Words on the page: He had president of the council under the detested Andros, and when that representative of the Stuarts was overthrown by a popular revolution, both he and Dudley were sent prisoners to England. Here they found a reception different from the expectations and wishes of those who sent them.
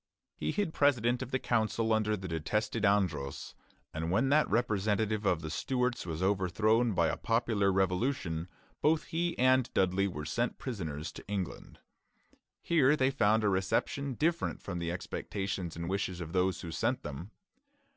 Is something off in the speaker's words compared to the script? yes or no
no